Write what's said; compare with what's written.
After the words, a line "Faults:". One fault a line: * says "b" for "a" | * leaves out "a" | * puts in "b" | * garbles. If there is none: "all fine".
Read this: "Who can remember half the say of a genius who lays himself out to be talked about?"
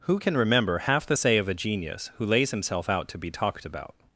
"Who can remember half the say of a genius who lays himself out to be talked about?"
Faults:
all fine